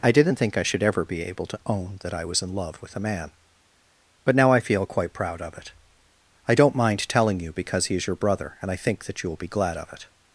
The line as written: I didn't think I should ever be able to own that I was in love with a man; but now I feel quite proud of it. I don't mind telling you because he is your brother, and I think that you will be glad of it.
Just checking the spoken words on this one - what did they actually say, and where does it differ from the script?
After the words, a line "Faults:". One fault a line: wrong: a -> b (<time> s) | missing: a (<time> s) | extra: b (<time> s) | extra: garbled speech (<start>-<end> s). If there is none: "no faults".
I didn't think I should ever be able to own that I was in love with a man; but now I feel quite proud of it. I don't mind telling you because he is your brother, and I think that you will be glad of it.
Faults:
no faults